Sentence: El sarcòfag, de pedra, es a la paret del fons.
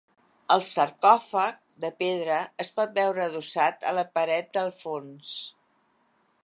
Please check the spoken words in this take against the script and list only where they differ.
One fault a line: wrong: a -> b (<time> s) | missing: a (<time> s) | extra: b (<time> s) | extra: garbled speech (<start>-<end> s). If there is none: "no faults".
extra: pot veure adossat (2.8 s)